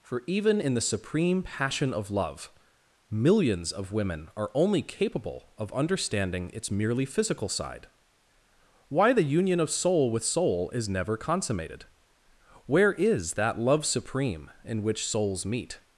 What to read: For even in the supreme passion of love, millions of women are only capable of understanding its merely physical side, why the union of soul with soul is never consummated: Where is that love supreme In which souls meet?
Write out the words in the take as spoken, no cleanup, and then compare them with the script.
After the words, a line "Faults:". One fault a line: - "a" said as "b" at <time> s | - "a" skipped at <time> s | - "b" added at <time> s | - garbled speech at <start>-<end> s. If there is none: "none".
For even in the supreme passion of love, millions of women are only capable of understanding its merely physical side, why the union of soul with soul is never consummated: Where is that love supreme In which souls meet?
Faults:
none